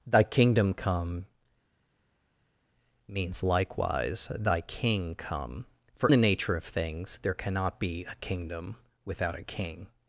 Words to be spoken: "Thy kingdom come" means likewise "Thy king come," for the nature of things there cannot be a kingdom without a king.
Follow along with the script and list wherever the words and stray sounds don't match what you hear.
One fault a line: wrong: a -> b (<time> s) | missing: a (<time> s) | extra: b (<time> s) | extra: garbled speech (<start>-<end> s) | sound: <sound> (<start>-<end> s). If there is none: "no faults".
no faults